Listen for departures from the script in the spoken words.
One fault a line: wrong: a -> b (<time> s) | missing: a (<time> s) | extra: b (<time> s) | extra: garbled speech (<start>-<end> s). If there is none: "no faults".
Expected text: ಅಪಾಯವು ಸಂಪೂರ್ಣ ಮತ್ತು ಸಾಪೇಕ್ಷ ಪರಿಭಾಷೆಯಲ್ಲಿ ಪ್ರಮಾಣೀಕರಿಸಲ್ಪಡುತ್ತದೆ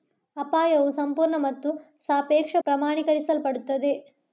missing: ಪರಿಭಾಷೆಯಲ್ಲಿ (2.5 s)